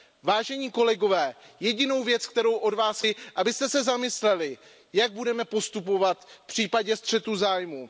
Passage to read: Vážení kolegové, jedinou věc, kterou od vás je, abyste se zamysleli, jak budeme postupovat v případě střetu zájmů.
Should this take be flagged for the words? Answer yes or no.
no